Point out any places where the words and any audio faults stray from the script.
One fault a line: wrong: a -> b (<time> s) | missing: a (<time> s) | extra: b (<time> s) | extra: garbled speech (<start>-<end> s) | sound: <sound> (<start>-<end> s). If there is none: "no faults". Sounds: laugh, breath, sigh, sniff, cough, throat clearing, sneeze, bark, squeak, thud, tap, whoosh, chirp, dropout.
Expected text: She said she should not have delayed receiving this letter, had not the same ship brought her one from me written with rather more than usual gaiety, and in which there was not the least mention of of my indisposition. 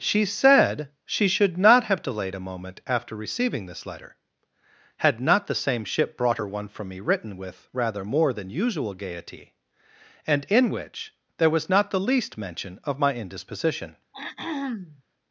extra: a moment after (2.3 s)
missing: of (13.0 s)
sound: throat clearing (14.1-15.0 s)